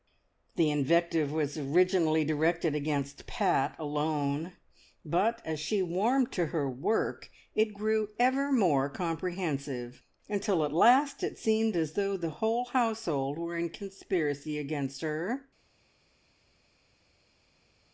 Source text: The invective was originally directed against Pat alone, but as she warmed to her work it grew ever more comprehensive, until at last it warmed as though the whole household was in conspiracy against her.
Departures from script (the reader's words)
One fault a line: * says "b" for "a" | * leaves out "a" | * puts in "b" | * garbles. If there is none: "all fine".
* says "seemed" for "warmed"
* says "were" for "was"